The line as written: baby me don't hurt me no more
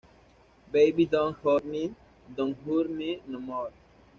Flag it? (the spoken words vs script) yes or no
yes